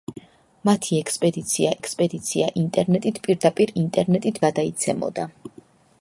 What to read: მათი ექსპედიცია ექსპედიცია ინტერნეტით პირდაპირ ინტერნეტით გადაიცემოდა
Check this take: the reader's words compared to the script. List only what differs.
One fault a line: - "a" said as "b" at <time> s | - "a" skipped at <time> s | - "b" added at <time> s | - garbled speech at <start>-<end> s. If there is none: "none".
none